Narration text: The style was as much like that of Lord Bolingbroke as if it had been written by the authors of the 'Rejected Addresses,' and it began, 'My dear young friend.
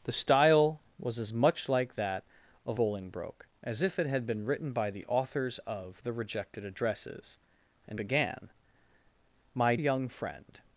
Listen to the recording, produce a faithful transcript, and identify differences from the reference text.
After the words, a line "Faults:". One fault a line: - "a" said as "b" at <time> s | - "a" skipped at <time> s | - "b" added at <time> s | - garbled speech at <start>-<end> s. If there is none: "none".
The style was as much like that of Bolingbroke as if it had been written by the authors of the 'Rejected Addresses,' and began, 'My young friend.
Faults:
- "Lord" skipped at 2.8 s
- "it" skipped at 8.0 s
- "dear" skipped at 9.8 s